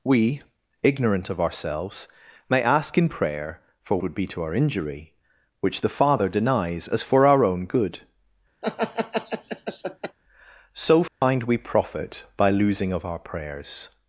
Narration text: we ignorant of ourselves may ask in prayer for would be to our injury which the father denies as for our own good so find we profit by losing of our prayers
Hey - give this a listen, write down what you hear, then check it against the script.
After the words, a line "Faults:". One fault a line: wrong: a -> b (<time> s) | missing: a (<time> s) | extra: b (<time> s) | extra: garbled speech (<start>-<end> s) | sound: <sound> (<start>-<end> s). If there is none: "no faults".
we ignorant of ourselves may ask in prayer for would be to our injury which the father denies as for our own good so find we profit by losing of our prayers
Faults:
sound: laugh (8.6-10.2 s)
sound: dropout (11.1-11.2 s)